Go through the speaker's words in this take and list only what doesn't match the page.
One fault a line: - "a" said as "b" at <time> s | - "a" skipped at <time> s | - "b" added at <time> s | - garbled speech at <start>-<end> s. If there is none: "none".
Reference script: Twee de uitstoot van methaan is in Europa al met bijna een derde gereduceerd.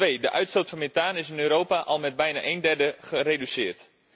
none